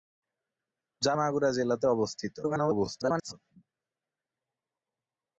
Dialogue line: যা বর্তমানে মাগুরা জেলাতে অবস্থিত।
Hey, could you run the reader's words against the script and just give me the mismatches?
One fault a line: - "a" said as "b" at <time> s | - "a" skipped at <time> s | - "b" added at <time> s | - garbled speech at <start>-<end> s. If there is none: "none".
- "বর্তমানে" skipped at 1.1 s
- garbled speech at 2.4-3.3 s